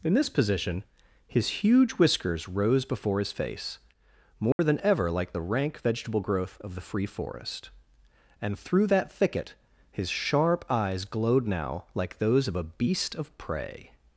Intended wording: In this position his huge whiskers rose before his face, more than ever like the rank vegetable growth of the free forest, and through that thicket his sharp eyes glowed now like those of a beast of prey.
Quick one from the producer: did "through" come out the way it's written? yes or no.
yes